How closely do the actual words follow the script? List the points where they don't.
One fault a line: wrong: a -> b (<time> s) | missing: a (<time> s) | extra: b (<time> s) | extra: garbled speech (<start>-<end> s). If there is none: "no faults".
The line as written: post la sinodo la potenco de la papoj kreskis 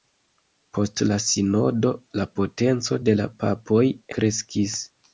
no faults